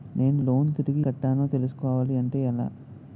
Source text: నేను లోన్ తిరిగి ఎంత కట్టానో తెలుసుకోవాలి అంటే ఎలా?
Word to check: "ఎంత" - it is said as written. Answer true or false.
false